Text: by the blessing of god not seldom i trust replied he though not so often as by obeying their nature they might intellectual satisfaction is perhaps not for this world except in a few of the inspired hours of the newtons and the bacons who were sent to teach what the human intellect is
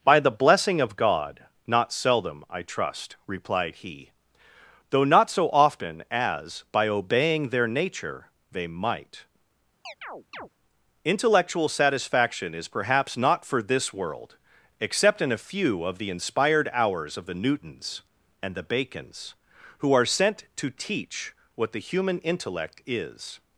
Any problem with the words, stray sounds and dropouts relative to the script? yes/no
yes